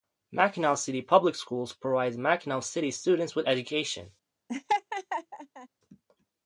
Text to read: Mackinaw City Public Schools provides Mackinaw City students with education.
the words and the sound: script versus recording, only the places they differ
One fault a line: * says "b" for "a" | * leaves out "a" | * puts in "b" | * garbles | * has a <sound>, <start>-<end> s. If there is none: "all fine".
* has a laugh, 4.5-5.7 s